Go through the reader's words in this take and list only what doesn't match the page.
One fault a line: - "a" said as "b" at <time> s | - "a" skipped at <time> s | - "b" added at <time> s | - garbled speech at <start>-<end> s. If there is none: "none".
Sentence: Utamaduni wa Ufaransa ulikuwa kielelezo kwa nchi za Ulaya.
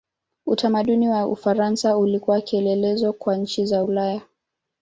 none